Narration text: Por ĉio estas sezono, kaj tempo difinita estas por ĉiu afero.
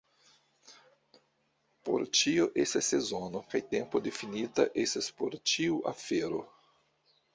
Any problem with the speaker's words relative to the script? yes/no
no